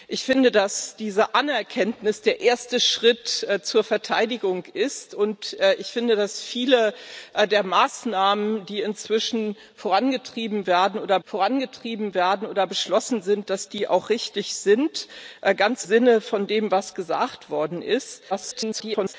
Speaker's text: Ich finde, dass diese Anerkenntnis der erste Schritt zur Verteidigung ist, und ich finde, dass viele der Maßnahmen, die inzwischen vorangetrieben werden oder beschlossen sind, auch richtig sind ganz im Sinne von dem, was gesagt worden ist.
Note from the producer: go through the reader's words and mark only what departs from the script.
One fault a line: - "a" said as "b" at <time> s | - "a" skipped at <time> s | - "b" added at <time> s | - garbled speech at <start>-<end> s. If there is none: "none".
- "vorangetrieben werden oder" added at 11.2 s
- "im" skipped at 15.9 s
- garbled speech at 18.3-19.1 s